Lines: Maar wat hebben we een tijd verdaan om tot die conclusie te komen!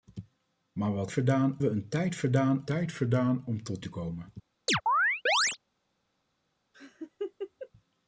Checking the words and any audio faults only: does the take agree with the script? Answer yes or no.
no